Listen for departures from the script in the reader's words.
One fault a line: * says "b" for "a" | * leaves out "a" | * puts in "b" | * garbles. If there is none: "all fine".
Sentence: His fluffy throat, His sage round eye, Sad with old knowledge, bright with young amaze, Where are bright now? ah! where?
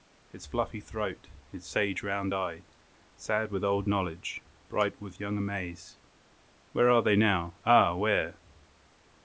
* says "they" for "bright"